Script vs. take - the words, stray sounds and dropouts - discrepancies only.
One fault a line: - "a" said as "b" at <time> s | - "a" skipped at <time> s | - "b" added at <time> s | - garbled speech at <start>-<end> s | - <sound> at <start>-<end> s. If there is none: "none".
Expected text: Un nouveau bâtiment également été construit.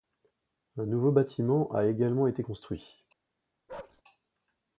- "a" added at 1.7 s
- bark at 3.7-4.0 s